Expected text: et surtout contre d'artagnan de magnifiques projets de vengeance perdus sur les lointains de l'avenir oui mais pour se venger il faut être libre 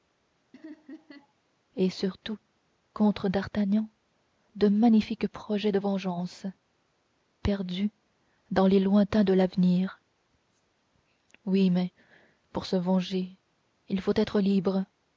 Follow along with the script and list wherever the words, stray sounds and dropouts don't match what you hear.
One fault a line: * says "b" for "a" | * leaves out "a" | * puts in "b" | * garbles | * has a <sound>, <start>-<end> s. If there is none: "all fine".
* has a laugh, 0.5-1.3 s
* says "dans" for "sur"